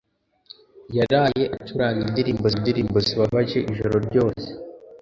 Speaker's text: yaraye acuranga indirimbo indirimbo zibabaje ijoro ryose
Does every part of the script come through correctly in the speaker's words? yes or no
yes